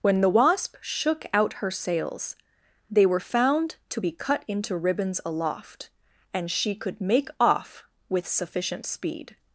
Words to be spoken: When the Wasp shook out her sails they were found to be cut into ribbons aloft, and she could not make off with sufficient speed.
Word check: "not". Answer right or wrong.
wrong